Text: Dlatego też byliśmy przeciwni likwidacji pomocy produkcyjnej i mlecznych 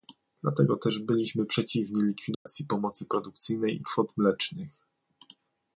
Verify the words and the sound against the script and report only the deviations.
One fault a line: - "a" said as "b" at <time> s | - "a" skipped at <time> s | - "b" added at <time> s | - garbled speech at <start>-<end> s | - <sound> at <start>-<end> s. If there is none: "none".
- dropout at 2.3-2.5 s
- "kwot" added at 3.8 s